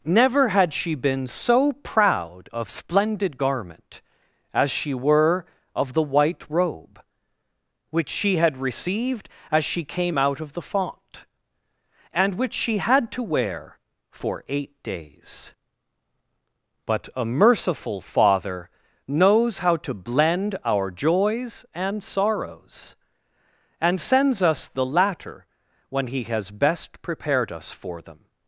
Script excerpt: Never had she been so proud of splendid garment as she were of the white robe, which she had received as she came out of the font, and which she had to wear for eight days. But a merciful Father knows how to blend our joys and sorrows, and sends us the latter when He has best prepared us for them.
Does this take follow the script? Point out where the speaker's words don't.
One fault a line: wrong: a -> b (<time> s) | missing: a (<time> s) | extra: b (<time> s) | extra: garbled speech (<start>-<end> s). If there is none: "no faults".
no faults